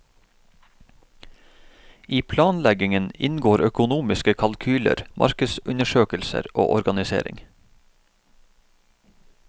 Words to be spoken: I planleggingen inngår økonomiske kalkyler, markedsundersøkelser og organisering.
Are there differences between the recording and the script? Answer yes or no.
no